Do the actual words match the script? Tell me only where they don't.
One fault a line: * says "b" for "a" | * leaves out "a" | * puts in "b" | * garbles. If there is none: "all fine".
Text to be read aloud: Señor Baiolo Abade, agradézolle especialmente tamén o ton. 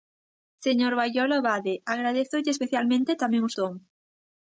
all fine